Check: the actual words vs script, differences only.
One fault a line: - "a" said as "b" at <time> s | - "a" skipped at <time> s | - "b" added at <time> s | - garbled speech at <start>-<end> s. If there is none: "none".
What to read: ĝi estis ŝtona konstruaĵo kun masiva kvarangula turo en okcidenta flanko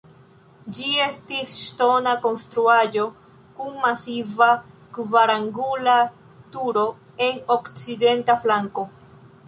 none